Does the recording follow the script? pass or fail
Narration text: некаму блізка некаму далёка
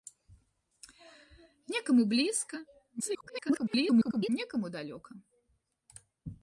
fail